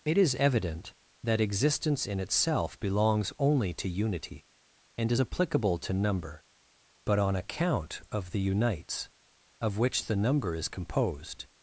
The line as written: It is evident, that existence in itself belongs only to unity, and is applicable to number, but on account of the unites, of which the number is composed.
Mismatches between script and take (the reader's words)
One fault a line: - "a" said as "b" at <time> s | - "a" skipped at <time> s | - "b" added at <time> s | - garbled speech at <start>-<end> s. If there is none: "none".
none